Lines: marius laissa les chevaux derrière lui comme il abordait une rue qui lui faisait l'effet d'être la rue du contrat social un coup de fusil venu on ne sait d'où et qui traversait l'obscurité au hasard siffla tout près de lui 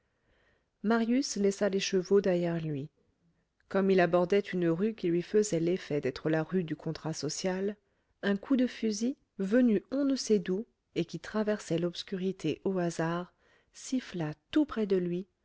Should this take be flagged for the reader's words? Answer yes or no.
no